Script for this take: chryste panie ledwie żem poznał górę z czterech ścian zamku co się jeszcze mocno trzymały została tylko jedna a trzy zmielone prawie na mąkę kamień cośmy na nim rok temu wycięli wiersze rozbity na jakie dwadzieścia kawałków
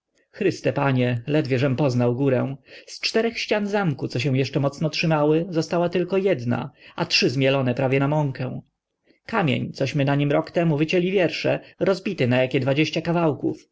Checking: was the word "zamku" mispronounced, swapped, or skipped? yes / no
no